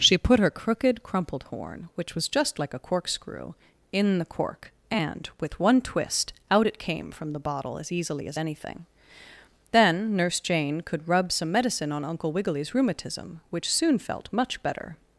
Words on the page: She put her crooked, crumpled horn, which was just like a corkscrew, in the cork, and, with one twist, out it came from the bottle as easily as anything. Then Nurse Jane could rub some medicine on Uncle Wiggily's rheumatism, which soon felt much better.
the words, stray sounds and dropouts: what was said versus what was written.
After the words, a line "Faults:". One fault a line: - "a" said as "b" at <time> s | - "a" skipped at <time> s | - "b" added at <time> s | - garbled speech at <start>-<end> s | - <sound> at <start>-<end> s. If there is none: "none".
She put her crooked, crumpled horn, which was just like a corkscrew, in the cork, and, with one twist, out it came from the bottle as easily as anything. Then Nurse Jane could rub some medicine on Uncle Wiggily's rheumatism, which soon felt much better.
Faults:
none